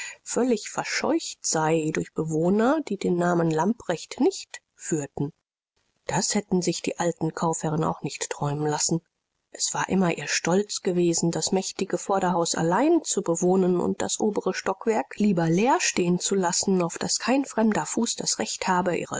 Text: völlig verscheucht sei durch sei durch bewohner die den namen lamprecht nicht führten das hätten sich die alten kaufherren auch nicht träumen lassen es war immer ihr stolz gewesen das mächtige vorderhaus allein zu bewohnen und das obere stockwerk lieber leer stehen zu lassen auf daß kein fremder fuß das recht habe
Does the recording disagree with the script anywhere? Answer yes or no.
yes